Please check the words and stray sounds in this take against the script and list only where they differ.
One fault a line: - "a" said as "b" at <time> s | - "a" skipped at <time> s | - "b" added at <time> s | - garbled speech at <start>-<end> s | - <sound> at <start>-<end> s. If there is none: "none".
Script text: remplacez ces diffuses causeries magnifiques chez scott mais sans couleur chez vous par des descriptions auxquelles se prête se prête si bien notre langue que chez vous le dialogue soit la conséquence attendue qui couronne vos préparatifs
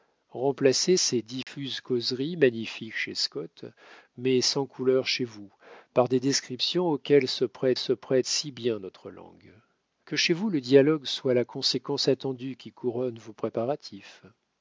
- dropout at 1.4-1.5 s